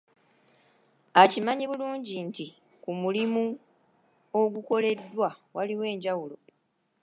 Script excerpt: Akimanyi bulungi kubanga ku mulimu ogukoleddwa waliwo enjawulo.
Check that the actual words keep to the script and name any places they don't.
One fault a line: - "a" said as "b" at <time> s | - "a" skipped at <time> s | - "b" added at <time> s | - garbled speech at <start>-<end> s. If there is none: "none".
- "kubanga" said as "nti" at 2.3 s